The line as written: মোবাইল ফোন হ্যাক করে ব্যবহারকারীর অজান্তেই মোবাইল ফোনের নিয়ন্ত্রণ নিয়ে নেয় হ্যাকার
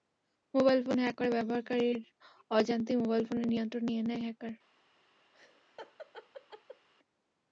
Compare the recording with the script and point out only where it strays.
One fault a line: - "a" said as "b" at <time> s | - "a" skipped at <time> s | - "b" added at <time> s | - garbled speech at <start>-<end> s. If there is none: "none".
none